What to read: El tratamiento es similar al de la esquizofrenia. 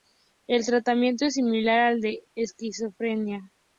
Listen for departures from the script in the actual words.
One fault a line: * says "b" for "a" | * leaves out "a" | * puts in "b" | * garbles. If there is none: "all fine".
all fine